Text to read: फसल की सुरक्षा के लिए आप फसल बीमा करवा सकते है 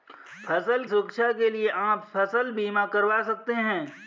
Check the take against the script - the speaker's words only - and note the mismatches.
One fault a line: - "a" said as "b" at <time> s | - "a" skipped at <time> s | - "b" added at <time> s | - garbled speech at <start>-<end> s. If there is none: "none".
- "की" skipped at 0.8 s